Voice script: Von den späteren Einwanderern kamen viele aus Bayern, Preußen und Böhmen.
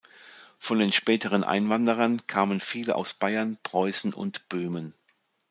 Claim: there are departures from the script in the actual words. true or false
false